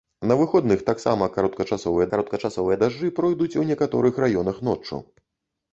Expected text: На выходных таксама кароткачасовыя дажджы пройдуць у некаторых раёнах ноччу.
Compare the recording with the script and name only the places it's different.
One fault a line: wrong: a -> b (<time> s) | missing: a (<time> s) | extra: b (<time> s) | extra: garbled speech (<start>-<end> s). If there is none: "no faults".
extra: кароткачасовыя (2.1 s)